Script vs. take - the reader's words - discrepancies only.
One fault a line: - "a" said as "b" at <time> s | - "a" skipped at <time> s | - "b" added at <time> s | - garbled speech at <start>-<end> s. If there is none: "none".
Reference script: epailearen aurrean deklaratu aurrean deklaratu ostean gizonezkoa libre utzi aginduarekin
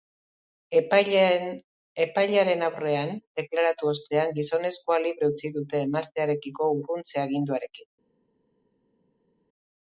- "aurrean deklaratu" skipped at 3.9 s
- "dute emaztearekiko urruntze" added at 5.6 s